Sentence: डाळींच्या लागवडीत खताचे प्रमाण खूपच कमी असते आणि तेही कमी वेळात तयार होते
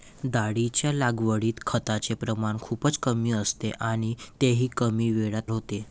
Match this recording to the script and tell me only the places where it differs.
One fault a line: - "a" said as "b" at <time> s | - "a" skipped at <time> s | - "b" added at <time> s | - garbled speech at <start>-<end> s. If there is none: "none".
- "तयार" skipped at 5.5 s